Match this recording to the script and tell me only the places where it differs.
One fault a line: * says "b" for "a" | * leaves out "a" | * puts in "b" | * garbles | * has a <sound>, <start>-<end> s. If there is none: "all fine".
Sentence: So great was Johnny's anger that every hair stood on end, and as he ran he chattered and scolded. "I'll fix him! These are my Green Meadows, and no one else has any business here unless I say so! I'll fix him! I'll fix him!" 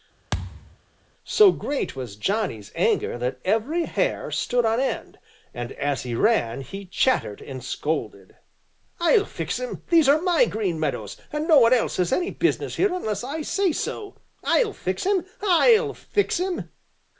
* has a thud, 0.3-0.8 s